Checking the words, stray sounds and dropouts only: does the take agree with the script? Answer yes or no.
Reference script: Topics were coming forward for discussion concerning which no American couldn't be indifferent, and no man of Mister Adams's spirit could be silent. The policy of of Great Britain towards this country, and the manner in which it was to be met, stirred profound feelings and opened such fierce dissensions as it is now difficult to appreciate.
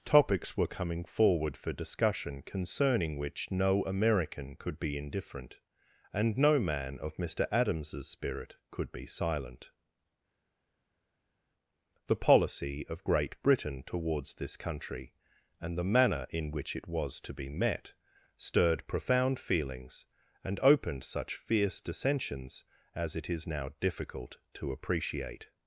no